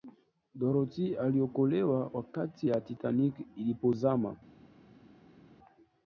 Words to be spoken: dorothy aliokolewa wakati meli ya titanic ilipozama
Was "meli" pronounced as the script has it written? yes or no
no